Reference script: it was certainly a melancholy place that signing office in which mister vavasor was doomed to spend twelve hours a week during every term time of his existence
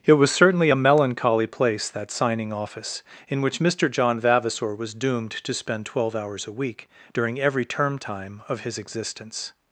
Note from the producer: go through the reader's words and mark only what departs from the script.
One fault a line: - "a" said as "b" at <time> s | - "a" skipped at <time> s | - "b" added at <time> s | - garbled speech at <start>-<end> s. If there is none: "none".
- "john" added at 3.9 s